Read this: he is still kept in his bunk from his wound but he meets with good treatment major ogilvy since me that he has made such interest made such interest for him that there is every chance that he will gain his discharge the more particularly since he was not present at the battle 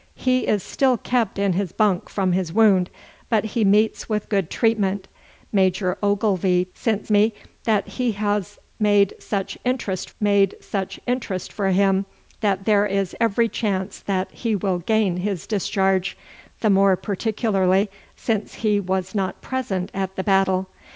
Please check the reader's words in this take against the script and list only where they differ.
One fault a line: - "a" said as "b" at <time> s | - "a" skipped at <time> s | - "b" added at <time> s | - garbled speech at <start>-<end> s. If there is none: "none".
none